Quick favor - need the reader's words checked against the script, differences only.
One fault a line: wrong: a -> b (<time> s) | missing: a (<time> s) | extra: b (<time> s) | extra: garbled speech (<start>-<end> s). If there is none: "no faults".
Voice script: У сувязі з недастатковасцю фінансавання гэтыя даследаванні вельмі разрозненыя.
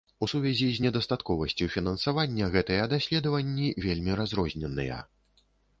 no faults